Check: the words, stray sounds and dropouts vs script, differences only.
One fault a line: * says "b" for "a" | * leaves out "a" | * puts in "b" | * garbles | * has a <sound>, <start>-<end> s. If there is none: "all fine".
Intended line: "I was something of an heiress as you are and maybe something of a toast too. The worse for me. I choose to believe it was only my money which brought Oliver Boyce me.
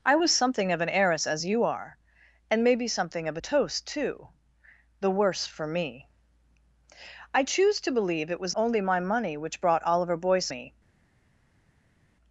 all fine